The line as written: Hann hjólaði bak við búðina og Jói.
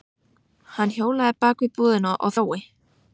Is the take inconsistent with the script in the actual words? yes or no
no